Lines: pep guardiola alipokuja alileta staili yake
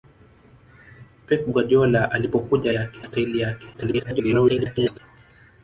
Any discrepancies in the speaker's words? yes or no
yes